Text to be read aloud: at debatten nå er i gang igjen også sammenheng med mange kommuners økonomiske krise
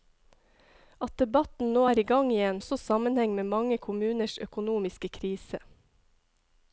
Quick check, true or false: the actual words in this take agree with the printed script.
true